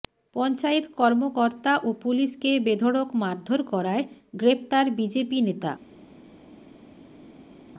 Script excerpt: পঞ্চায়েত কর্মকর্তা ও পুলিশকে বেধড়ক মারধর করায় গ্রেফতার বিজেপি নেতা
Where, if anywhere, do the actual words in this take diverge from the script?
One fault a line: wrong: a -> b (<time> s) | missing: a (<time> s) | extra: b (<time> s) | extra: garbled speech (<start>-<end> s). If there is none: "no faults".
no faults